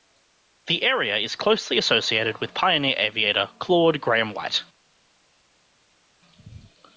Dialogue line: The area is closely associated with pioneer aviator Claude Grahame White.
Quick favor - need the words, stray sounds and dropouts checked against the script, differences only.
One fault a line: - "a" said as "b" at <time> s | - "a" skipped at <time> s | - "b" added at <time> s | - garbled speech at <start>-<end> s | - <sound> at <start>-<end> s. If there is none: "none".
none